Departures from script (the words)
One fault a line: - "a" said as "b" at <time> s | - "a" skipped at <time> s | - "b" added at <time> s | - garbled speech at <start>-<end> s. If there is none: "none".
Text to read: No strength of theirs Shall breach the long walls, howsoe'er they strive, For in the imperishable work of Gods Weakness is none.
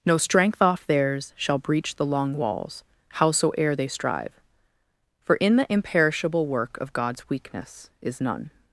- "of" said as "off" at 0.6 s